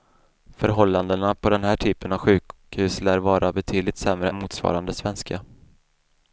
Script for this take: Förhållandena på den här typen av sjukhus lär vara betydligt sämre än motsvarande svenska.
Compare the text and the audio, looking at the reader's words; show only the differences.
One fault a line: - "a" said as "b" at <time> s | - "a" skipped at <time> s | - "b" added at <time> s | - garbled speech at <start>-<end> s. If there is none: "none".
- "än" skipped at 4.3 s